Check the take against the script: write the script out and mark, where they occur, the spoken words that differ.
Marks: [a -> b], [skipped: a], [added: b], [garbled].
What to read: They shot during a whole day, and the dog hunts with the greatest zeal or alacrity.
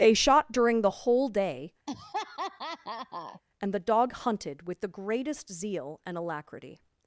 They shot during [a -> the] whole day, and the dog [hunts -> hunted] with the greatest zeal [or -> and] alacrity.